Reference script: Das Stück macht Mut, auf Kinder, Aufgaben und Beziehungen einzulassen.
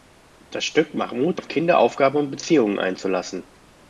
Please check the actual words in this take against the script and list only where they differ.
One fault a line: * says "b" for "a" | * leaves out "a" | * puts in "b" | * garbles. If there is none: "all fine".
all fine